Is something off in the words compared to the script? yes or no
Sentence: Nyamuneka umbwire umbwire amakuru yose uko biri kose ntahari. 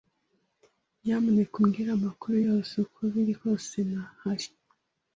yes